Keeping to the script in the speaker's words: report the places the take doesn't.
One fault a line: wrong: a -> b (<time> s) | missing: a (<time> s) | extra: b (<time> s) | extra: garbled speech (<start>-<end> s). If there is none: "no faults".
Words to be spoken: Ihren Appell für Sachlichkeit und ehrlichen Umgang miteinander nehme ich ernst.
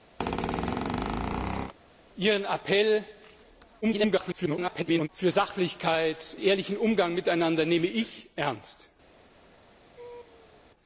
extra: garbled speech (3.8-5.1 s)
missing: und (6.4 s)